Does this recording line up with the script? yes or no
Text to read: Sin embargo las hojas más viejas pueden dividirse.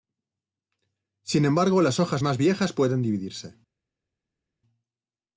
yes